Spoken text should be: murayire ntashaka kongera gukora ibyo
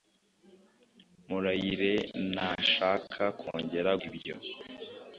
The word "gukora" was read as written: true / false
false